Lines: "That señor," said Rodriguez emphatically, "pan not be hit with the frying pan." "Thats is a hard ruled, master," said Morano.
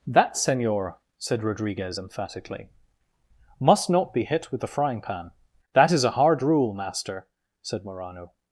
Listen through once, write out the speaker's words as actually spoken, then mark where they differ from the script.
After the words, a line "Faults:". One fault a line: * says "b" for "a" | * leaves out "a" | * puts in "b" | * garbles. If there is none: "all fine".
"That señor," said Rodriguez emphatically, "must not be hit with the frying pan." "That is a hard rule, master," said Morano.
Faults:
* says "must" for "pan"
* says "That" for "Thats"
* says "rule" for "ruled"